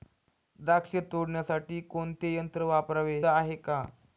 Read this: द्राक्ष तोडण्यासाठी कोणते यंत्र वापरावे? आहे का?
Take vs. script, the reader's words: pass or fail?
pass